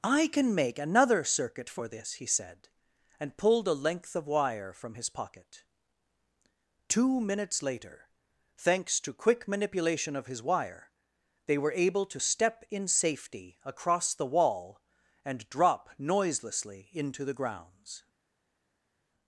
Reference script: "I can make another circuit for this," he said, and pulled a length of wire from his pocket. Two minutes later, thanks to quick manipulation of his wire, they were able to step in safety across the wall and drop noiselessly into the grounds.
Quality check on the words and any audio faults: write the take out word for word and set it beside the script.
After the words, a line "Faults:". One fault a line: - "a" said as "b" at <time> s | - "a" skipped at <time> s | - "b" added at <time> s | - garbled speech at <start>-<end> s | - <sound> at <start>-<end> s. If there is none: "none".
"I can make another circuit for this," he said, and pulled a length of wire from his pocket. Two minutes later, thanks to quick manipulation of his wire, they were able to step in safety across the wall and drop noiselessly into the grounds.
Faults:
none